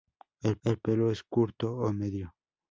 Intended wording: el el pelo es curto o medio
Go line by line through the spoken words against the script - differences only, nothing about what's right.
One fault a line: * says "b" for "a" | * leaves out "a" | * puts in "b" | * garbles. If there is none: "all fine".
all fine